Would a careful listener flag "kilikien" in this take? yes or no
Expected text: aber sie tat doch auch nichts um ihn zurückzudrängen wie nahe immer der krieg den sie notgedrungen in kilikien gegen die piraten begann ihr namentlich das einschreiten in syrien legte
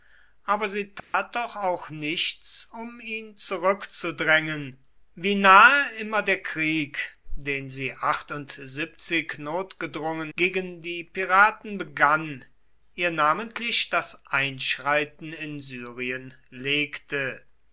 yes